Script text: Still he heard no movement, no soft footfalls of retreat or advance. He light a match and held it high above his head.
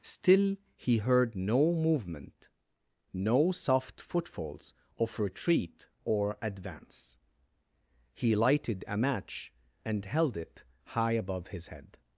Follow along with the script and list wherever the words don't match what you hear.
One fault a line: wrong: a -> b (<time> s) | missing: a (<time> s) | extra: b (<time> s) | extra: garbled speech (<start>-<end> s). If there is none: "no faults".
wrong: light -> lighted (8.3 s)